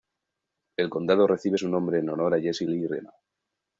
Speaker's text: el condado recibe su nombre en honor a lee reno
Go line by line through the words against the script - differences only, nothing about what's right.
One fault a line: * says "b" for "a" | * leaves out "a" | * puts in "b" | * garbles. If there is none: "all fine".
* puts in "jesse"